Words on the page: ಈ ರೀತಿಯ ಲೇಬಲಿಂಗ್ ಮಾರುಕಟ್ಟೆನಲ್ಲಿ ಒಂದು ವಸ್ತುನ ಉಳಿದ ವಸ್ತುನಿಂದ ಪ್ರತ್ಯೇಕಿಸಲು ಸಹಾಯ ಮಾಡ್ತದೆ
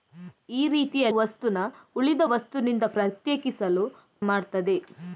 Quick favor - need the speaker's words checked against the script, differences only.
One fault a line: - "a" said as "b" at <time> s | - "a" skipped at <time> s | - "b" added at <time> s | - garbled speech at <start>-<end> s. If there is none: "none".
- "ಲೇಬಲಿಂಗ್ ಮಾರುಕಟ್ಟೆನಲ್ಲಿ ಒಂದು" skipped at 1.1 s
- "ಸಹಾಯ" skipped at 3.8 s